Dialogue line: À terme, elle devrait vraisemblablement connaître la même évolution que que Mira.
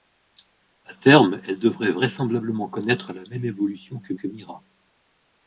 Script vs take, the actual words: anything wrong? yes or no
no